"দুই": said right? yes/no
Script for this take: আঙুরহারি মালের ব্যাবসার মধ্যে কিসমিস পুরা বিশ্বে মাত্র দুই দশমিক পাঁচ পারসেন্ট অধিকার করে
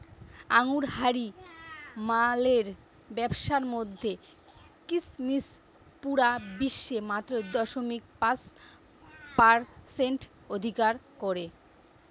no